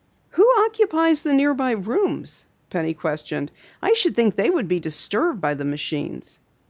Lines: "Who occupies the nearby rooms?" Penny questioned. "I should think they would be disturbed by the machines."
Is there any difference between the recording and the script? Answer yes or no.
no